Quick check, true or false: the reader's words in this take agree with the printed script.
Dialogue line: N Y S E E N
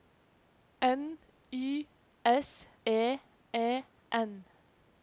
true